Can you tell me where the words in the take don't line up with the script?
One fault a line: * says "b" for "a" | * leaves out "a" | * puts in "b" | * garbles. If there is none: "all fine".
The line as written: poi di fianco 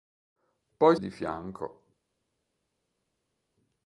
all fine